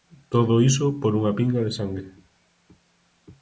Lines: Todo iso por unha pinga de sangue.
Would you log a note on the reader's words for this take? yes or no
no